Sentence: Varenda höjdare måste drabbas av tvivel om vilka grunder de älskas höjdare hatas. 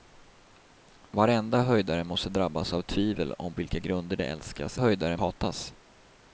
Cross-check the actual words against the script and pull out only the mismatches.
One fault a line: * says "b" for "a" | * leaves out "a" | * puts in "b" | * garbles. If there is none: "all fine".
all fine